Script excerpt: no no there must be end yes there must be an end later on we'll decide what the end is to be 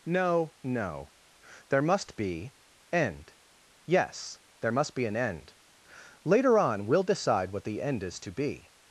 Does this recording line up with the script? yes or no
yes